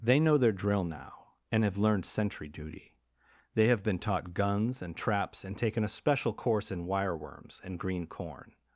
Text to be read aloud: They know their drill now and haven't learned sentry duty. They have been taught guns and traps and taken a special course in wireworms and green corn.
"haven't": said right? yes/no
no